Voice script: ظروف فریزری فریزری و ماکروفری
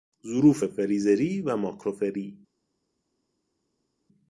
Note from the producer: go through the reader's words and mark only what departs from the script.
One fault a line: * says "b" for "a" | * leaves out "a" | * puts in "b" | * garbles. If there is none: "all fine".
* leaves out "فریزری"